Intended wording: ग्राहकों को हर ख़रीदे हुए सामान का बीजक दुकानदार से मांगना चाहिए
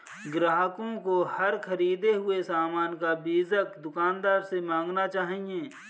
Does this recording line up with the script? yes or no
yes